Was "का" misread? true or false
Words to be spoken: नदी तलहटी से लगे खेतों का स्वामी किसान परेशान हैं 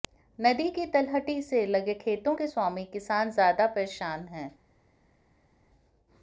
true